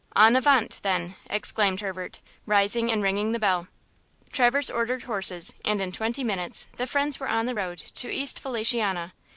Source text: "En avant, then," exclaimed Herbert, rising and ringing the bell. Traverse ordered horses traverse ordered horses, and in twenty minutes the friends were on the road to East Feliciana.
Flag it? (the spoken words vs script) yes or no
yes